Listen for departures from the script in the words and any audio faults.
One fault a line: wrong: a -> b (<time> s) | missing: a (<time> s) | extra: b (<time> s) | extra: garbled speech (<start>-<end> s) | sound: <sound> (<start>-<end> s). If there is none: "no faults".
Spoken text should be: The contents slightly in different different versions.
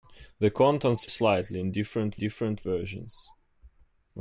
no faults